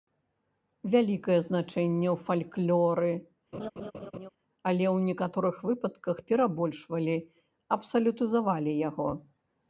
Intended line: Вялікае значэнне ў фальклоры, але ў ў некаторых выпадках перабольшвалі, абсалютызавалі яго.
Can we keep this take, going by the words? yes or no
no